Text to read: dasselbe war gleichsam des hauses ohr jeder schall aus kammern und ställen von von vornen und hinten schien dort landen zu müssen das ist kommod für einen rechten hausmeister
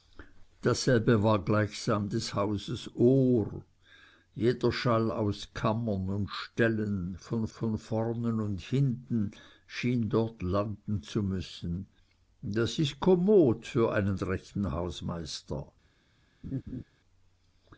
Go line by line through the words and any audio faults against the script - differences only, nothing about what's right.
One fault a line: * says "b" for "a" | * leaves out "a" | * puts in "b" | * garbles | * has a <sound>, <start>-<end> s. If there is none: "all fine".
* has a laugh, 16.4-16.8 s